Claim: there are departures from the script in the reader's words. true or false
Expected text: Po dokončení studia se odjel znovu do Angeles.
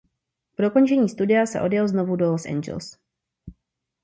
true